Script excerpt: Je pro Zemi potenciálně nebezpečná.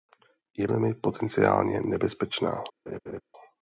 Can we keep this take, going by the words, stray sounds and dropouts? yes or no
no